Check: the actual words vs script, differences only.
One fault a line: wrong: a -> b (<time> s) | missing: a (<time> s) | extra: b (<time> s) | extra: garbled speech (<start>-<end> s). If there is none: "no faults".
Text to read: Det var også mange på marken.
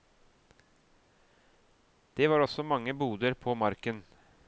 extra: boder (2.9 s)